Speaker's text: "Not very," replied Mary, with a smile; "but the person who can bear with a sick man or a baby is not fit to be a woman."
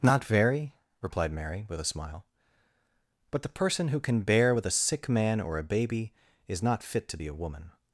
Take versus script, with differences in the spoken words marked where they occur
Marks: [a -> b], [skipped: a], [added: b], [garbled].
"Not very," replied Mary, with a smile; "but the person who can bear with a sick man or a baby is not fit to be a woman."